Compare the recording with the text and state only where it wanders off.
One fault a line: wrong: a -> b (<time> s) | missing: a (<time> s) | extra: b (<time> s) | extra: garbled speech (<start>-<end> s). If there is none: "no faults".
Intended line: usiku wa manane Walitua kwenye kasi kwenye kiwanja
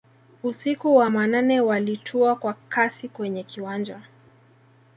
wrong: kwenye -> kwa (2.4 s)